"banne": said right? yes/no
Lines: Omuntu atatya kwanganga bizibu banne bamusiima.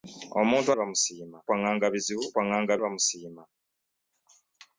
no